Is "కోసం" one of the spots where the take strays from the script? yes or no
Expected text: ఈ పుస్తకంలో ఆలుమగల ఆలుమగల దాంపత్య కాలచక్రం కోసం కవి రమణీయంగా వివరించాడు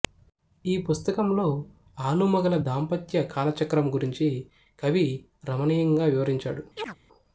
yes